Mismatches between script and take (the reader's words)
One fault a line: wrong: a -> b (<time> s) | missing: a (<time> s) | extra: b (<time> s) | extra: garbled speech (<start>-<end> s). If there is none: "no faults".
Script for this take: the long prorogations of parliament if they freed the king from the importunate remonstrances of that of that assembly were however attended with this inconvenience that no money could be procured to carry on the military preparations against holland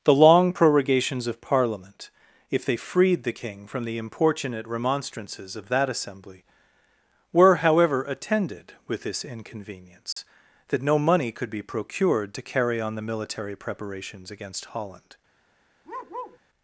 missing: of that (5.9 s)